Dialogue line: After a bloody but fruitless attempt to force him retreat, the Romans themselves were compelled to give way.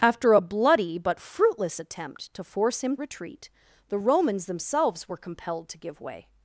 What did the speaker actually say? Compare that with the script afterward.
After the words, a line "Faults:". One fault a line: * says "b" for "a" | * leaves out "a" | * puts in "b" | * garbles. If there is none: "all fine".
After a bloody but fruitless attempt to force him retreat, the Romans themselves were compelled to give way.
Faults:
all fine